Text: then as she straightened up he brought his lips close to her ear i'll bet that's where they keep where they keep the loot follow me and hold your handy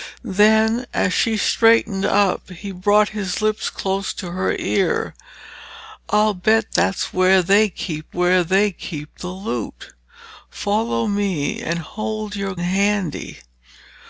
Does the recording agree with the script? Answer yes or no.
yes